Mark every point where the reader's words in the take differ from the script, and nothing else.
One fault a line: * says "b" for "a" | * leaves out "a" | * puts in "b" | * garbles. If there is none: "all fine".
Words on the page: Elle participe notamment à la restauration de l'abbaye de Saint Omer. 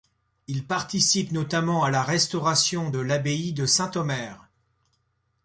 * says "Il" for "Elle"